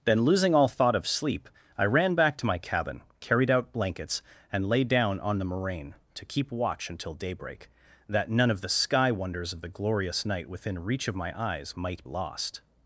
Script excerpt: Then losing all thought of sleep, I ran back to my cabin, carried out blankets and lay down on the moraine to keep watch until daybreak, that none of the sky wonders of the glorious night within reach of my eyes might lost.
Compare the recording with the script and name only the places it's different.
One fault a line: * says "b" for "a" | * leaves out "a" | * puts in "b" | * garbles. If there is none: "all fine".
all fine